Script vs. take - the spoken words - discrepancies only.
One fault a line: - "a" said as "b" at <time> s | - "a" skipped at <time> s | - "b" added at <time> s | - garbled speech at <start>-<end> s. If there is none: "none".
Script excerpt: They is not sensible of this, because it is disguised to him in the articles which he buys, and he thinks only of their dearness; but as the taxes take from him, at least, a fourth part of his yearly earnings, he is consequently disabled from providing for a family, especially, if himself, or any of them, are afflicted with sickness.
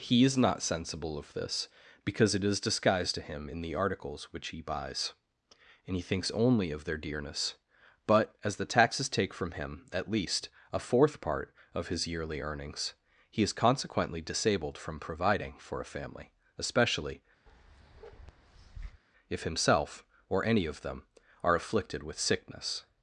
- "They" said as "He" at 0.0 s